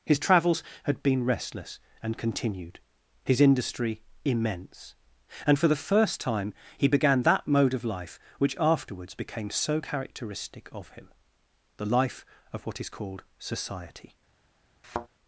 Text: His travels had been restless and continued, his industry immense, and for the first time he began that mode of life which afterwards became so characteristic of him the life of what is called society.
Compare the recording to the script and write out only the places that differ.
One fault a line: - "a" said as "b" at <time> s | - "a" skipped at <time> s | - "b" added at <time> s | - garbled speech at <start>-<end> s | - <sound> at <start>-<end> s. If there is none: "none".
- thud at 14.8-15.1 s